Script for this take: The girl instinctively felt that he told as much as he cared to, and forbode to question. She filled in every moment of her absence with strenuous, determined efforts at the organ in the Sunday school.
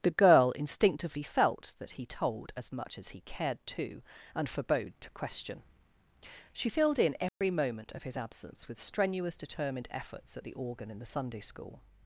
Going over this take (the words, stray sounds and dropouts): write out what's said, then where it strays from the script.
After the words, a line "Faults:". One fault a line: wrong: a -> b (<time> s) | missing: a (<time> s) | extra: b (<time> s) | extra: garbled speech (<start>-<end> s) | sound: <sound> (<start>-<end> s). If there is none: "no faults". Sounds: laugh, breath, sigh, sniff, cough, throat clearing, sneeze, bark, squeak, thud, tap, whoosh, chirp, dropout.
The girl instinctively felt that he told as much as he cared to, and forbode to question. She filled in every moment of his absence with strenuous, determined efforts at the organ in the Sunday school.
Faults:
sound: dropout (7.3-7.4 s)
wrong: her -> his (8.0 s)